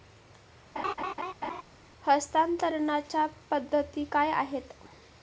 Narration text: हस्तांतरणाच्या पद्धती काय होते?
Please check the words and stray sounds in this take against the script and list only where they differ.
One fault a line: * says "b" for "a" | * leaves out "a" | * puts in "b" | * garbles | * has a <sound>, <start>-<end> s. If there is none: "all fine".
* has a laugh, 0.8-1.6 s
* says "आहेत" for "होते"